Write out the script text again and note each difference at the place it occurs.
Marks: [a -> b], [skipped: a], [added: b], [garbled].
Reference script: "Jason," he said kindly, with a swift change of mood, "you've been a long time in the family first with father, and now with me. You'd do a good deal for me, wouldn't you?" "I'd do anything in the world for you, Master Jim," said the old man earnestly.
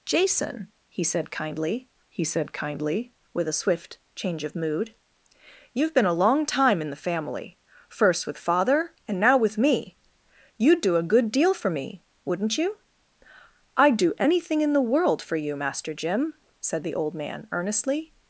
"Jason," he said kindly, [added: he said kindly] with a swift change of mood, "you've been a long time in the family first with father, and now with me. You'd do a good deal for me, wouldn't you?" "I'd do anything in the world for you, Master Jim," said the old man earnestly.